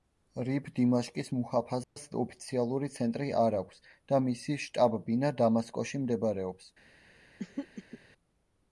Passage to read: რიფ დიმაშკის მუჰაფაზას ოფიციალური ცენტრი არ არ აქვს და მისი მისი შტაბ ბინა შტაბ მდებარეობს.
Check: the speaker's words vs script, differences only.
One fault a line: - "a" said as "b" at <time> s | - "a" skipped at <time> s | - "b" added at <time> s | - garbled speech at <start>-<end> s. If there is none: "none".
- "არ" skipped at 3.6 s
- "მისი" skipped at 4.6 s
- "შტაბ" said as "დამასკოში" at 5.4 s